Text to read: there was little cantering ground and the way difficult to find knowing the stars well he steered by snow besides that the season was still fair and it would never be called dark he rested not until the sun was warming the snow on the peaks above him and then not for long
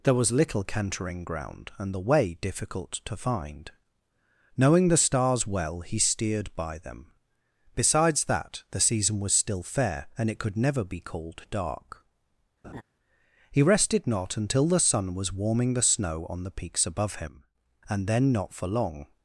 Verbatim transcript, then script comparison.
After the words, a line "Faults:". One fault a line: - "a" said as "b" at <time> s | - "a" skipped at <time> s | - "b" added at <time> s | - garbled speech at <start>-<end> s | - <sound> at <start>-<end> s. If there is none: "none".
there was little cantering ground and the way difficult to find knowing the stars well he steered by them besides that the season was still fair and it could never be called dark he rested not until the sun was warming the snow on the peaks above him and then not for long
Faults:
- "snow" said as "them" at 6.8 s
- "would" said as "could" at 10.4 s
- laugh at 12.6-12.8 s